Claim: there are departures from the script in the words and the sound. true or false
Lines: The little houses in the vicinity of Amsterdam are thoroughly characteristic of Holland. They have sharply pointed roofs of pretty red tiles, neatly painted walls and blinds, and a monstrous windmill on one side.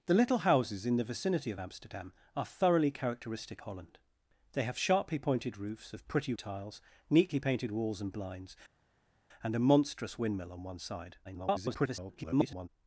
true